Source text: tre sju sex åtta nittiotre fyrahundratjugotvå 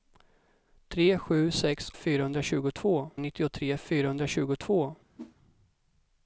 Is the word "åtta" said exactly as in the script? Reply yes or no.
no